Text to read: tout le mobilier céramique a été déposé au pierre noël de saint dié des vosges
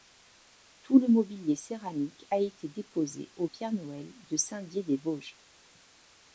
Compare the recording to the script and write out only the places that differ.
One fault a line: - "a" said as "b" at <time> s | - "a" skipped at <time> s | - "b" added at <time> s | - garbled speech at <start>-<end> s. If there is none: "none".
none